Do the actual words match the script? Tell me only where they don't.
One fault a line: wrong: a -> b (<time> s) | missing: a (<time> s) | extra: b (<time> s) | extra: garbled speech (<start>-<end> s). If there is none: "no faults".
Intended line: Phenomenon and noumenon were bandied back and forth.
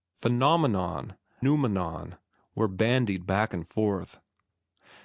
missing: and (1.1 s)